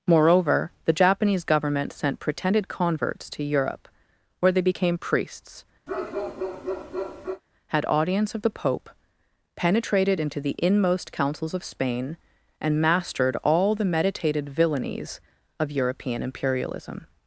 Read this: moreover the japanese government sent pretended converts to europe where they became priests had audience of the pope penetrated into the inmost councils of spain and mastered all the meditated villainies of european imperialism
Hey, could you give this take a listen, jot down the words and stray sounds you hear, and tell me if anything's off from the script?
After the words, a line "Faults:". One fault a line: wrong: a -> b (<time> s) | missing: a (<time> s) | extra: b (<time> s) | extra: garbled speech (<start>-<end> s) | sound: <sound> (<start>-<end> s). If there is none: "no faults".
moreover the japanese government sent pretended converts to europe where they became priests had audience of the pope penetrated into the inmost councils of spain and mastered all the meditated villainies of european imperialism
Faults:
sound: bark (5.9-7.4 s)